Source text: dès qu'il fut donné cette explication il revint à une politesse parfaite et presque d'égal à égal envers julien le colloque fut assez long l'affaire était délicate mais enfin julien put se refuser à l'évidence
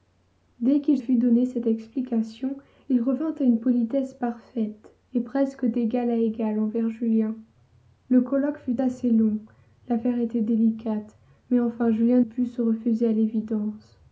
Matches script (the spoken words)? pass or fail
pass